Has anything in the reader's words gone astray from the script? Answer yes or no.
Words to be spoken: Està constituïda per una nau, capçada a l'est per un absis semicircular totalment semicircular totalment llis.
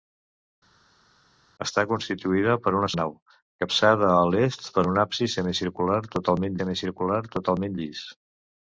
no